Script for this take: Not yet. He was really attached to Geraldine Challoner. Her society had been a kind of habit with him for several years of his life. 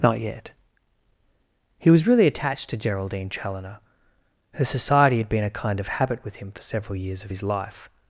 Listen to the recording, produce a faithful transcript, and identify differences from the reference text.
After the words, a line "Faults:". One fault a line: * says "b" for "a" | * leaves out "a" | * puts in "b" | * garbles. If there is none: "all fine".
Not yet. He was really attached to Geraldine Challoner. Her society had been a kind of habit with him for several years of his life.
Faults:
all fine